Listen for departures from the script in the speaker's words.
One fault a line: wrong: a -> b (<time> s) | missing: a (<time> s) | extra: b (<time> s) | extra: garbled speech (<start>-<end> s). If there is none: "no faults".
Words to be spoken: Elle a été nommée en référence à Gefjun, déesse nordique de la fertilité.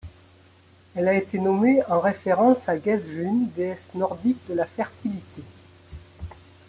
no faults